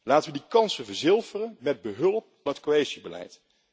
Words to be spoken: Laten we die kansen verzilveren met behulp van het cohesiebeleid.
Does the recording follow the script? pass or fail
fail